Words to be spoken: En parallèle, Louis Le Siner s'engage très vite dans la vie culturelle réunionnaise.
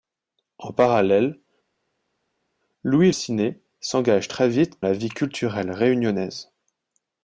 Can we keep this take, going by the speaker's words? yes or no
no